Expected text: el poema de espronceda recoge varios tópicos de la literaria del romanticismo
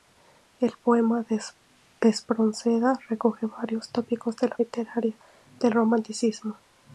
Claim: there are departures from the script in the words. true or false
false